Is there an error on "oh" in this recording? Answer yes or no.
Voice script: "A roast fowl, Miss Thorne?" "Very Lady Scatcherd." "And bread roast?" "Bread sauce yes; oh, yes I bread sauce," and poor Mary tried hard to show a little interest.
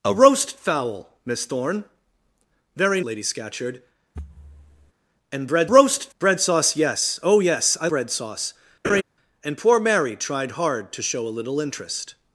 no